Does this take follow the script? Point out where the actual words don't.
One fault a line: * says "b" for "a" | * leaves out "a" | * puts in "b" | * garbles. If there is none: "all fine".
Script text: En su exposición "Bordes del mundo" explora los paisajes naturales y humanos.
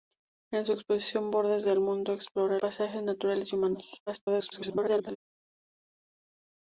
* leaves out "los"
* garbles